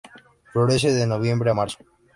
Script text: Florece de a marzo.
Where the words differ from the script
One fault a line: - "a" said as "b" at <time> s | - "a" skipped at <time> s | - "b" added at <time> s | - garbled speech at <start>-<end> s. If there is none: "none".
- "noviembre" added at 1.1 s